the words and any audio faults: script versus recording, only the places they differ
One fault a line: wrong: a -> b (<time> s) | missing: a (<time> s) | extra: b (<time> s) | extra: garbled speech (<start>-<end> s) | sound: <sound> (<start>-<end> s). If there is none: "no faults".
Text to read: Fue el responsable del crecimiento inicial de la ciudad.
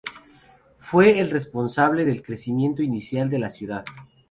no faults